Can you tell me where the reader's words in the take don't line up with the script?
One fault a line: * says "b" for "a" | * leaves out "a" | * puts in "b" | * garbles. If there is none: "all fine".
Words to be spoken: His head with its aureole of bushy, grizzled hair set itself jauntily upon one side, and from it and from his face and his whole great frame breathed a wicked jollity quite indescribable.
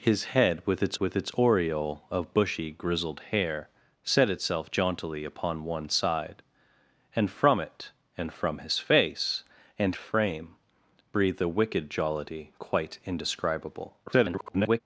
* puts in "with its"
* leaves out "his whole great"
* garbles